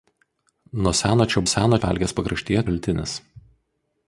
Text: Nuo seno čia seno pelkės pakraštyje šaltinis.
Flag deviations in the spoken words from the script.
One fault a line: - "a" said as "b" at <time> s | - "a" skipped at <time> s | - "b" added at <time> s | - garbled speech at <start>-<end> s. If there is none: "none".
none